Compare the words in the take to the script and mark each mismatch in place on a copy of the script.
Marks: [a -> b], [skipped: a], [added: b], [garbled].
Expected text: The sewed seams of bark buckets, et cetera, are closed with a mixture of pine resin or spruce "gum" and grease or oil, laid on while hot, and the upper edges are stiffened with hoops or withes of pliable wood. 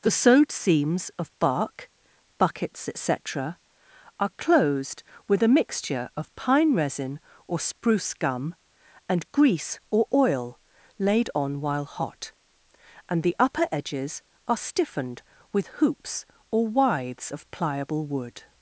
The sewed seams of bark buckets, et cetera, are closed with a mixture of pine resin or spruce "gum" and grease or oil, laid on while hot, and the upper edges are stiffened with hoops or withes of pliable wood.